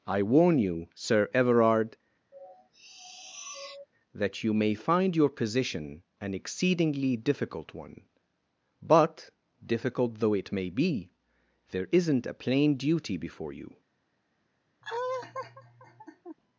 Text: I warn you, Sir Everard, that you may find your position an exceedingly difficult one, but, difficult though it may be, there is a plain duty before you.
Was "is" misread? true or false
true